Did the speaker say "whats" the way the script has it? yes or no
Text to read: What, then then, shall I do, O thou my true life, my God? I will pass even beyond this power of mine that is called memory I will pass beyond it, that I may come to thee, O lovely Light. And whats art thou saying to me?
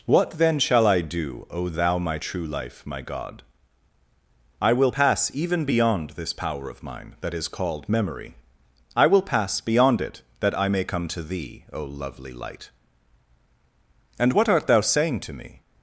no